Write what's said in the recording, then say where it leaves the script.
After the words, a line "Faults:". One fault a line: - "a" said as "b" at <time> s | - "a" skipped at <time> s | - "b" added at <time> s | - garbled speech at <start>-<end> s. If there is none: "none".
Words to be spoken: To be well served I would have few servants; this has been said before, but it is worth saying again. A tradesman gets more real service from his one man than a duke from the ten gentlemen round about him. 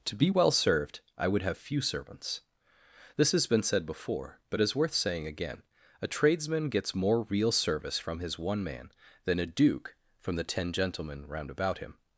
To be well served I would have few servants; this has been said before, but is worth saying again. A tradesman gets more real service from his one man than a duke from the ten gentlemen round about him.
Faults:
- "it" skipped at 4.6 s